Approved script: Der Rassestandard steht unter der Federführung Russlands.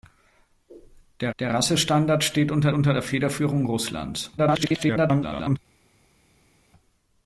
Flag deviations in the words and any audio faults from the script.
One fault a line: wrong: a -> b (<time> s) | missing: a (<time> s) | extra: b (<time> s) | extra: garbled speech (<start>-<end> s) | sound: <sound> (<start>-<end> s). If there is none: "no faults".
extra: der (1.4 s)
extra: unter (2.7 s)
extra: garbled speech (4.4-5.6 s)